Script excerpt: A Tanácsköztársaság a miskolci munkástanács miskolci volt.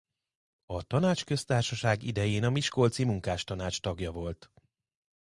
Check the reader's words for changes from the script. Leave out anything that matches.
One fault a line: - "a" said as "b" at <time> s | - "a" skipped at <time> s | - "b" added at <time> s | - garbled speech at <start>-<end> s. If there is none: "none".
- "idején" added at 2.0 s
- "miskolci" said as "tagja" at 3.8 s